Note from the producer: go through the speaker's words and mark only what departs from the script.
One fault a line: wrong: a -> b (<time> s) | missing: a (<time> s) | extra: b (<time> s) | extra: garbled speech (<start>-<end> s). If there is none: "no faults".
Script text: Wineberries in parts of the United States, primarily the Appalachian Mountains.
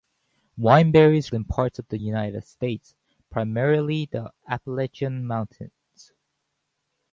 no faults